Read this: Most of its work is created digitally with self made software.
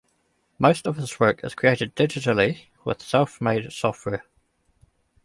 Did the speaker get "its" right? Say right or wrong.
wrong